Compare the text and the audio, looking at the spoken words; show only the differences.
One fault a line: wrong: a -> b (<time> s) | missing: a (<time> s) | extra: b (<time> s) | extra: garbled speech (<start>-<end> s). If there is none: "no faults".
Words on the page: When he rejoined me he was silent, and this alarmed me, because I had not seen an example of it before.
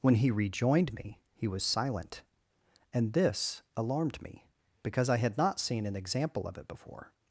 no faults